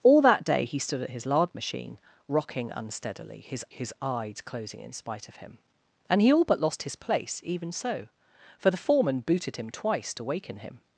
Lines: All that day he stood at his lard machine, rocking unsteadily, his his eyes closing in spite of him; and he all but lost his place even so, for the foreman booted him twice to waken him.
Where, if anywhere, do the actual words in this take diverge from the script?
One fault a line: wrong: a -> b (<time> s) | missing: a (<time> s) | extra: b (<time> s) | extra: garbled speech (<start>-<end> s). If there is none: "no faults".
no faults